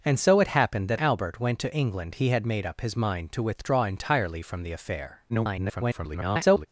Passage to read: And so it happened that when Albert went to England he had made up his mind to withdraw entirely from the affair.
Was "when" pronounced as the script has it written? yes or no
no